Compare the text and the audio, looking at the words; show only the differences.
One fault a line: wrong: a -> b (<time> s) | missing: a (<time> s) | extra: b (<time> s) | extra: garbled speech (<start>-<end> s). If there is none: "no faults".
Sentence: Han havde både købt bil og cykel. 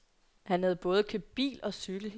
no faults